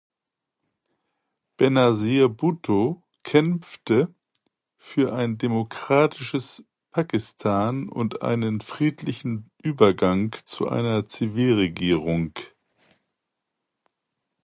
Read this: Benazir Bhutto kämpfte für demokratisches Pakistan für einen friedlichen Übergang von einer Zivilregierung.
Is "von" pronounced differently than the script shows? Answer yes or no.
yes